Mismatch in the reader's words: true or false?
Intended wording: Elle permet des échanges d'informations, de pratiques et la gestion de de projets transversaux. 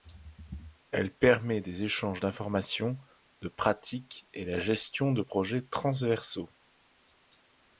true